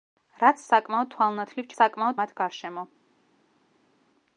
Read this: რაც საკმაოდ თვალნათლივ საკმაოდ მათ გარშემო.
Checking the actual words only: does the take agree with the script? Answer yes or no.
yes